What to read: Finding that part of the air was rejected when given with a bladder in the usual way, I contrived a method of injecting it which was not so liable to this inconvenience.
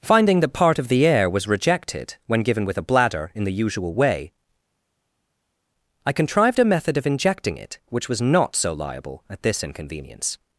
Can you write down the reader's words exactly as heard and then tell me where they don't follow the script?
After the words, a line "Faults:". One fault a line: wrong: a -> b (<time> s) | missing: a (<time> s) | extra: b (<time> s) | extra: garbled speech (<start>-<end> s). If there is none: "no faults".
Finding that part of the air was rejected when given with a bladder in the usual way, I contrived a method of injecting it which was not so liable at this inconvenience.
Faults:
wrong: to -> at (9.3 s)